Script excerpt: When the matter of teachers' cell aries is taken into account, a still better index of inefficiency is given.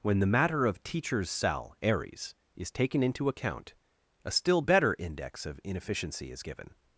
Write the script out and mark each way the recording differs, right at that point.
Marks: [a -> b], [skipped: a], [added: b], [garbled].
When the matter of teachers' cell aries is taken into account, a still better index of inefficiency is given.